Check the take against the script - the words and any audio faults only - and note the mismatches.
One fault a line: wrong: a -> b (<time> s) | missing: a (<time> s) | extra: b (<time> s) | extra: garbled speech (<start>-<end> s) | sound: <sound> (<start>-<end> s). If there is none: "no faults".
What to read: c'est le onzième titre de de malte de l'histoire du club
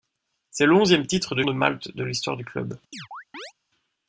sound: chirp (2.9-3.5 s)